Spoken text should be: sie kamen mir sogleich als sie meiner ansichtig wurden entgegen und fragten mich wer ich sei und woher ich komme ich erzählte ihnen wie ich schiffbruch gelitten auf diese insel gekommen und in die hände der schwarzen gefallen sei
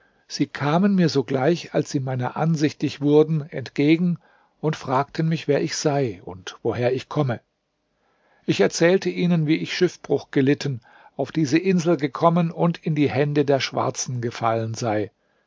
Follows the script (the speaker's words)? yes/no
yes